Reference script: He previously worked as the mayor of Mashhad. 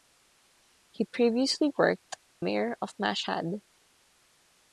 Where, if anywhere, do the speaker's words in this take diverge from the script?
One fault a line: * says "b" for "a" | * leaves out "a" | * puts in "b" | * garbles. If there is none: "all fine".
* leaves out "as the"